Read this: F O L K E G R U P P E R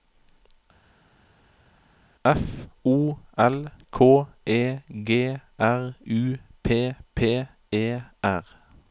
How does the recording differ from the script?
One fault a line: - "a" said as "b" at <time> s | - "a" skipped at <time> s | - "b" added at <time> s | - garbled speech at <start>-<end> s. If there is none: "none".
none